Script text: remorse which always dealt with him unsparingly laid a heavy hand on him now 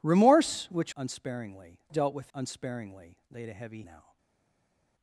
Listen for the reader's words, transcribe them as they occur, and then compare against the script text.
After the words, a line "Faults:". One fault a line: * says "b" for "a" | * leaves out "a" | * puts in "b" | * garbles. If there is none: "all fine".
remorse which unsparingly dealt with unsparingly laid a heavy now
Faults:
* says "unsparingly" for "always"
* leaves out "him"
* leaves out "hand on him"